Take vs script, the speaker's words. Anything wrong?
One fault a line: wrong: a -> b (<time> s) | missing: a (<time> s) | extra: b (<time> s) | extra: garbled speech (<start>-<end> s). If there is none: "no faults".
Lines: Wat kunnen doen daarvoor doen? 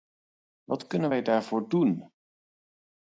wrong: doen -> wij (1.1 s)